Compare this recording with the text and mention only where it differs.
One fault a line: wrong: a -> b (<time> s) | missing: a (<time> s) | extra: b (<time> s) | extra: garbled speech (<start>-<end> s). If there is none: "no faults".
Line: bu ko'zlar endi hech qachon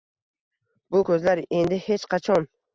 no faults